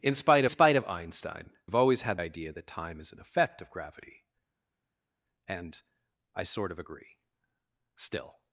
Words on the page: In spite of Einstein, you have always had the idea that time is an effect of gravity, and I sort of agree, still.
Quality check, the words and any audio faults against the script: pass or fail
fail